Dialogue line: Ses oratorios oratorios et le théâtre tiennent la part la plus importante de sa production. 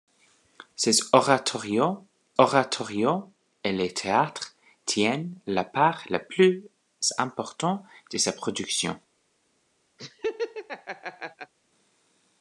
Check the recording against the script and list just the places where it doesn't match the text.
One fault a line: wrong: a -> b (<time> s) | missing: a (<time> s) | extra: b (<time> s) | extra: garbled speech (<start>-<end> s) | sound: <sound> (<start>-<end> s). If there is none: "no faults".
sound: laugh (10.0-11.5 s)